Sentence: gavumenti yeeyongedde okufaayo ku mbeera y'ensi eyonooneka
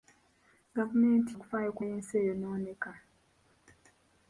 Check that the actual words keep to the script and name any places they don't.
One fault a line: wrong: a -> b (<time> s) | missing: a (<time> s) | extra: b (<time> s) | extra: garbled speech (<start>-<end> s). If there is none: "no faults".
missing: yeeyongedde (1.3 s)
missing: mbeera (1.8 s)